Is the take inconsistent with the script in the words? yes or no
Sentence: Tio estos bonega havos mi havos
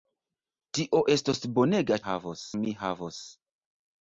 no